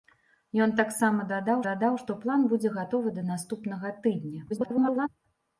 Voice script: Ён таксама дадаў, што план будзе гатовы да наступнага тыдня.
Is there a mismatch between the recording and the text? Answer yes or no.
yes